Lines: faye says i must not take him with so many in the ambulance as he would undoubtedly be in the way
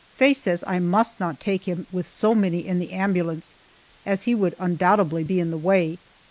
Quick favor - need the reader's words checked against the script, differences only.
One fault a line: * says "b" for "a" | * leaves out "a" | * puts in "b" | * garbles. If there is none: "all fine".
all fine